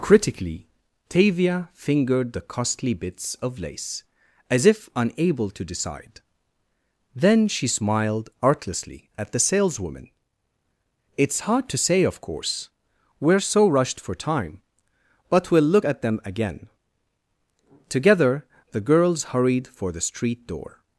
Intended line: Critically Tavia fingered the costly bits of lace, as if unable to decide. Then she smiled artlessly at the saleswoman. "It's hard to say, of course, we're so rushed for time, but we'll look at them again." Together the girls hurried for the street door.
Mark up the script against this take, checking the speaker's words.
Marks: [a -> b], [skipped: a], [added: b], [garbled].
Critically Tavia fingered the costly bits of lace, as if unable to decide. Then she smiled artlessly at the saleswoman. "It's hard to say, of course, we're so rushed for time, but we'll look at them again." Together the girls hurried for the street door.